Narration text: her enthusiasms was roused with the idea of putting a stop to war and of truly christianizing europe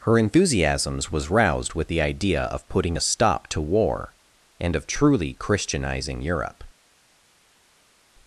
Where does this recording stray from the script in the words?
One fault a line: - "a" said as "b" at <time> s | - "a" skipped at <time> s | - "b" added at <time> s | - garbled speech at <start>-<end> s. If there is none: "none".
none